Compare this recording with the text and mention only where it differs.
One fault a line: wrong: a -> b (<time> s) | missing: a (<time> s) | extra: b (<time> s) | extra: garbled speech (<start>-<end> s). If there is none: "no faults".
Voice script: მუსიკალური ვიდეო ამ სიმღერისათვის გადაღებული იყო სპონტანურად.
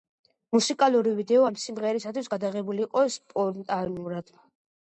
no faults